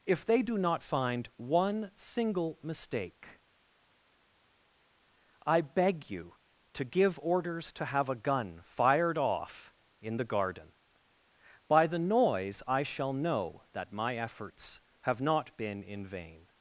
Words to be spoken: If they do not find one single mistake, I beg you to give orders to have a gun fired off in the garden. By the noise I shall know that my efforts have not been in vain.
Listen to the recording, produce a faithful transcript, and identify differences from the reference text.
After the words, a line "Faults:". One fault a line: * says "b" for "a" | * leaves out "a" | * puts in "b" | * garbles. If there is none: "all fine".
If they do not find one single mistake, I beg you to give orders to have a gun fired off in the garden. By the noise I shall know that my efforts have not been in vain.
Faults:
all fine